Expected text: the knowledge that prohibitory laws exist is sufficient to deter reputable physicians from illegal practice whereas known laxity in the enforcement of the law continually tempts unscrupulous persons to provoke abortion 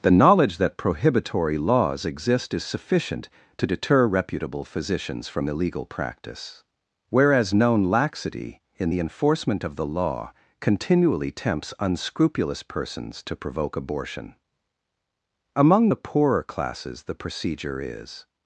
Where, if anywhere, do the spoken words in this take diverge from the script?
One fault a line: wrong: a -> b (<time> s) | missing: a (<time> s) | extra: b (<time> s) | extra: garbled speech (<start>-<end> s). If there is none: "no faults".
extra: among the poorer classes the procedure is (15.5 s)